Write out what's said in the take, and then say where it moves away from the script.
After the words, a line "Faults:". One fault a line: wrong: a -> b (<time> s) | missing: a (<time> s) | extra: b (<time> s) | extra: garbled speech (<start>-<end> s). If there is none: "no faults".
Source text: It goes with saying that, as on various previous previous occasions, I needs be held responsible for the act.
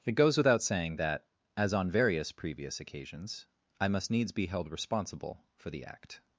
It goes without saying that, as on various previous occasions, I must needs be held responsible for the act.
Faults:
wrong: with -> without (0.3 s)
missing: previous (2.8 s)
extra: must (3.9 s)